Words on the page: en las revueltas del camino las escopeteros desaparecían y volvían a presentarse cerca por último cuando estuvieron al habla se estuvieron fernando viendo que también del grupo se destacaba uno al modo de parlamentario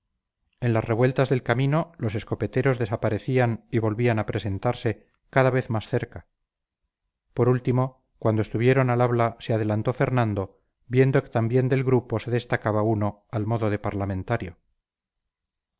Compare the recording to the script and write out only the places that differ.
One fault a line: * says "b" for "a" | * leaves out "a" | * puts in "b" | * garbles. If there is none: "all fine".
* says "los" for "las"
* puts in "cada vez más"
* says "adelantó" for "estuvieron"